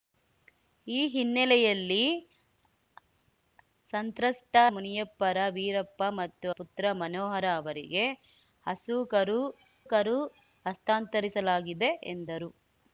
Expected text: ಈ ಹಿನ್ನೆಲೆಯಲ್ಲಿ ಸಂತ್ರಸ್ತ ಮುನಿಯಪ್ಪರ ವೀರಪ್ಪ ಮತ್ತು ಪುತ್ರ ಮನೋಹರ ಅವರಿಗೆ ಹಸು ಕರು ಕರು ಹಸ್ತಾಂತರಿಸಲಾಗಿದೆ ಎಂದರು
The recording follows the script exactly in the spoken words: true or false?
true